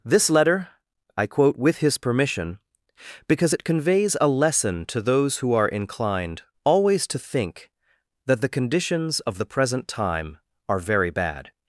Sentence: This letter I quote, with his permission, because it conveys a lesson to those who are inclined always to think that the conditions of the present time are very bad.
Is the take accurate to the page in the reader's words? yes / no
yes